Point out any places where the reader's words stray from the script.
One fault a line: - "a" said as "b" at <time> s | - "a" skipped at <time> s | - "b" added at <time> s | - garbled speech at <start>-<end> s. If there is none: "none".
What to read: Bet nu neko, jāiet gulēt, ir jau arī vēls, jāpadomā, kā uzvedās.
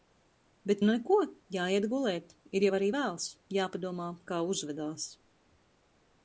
none